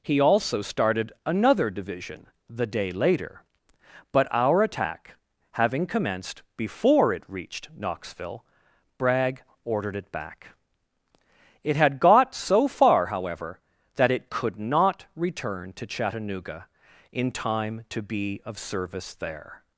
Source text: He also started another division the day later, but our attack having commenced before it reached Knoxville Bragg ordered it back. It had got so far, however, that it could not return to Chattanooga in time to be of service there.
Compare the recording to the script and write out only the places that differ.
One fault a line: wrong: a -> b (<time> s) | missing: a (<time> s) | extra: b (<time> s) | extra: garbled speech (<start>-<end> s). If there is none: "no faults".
no faults